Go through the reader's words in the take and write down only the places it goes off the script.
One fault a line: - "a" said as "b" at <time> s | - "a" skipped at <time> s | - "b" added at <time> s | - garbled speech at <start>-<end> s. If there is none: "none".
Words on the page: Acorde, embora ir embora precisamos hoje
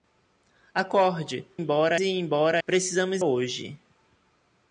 none